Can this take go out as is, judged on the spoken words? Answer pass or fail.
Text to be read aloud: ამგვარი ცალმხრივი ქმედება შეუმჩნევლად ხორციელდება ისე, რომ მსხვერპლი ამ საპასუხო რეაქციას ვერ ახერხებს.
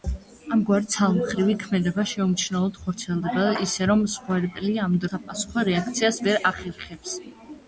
pass